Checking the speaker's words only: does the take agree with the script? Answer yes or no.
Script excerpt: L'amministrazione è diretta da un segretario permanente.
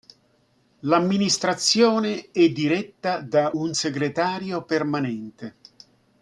yes